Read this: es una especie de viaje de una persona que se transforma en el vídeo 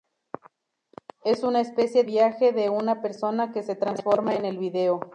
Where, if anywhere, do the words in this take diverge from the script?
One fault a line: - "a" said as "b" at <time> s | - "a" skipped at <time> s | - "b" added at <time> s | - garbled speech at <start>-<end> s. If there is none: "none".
- "de" skipped at 2.0 s